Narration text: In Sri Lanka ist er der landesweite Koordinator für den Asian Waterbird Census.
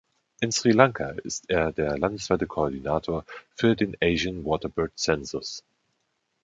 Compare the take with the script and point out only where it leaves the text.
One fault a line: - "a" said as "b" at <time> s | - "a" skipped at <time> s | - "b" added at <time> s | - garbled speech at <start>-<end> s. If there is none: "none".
none